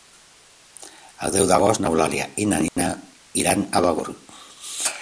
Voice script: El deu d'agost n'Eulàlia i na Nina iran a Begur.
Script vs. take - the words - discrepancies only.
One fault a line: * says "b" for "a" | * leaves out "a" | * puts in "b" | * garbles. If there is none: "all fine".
all fine